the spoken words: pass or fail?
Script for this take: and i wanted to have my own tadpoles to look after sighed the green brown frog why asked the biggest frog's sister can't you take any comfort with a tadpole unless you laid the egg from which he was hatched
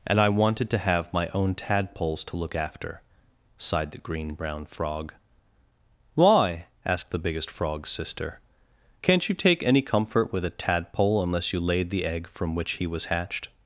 pass